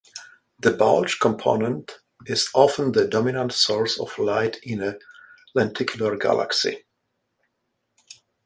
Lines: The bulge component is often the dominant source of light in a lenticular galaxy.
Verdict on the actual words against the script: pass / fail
pass